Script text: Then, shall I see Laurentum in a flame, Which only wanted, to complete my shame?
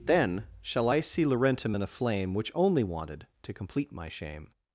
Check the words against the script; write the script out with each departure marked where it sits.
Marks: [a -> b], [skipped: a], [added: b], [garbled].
Then, shall I see Laurentum in a flame, Which only wanted, to complete my shame?